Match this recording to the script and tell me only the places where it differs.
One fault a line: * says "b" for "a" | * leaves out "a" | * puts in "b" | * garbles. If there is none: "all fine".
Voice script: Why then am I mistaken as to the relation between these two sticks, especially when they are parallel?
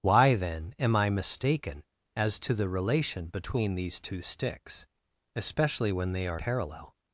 all fine